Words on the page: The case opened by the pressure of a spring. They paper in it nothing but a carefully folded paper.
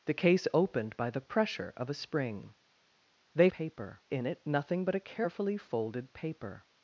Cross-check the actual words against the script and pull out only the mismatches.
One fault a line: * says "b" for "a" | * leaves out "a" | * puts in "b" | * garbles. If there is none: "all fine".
all fine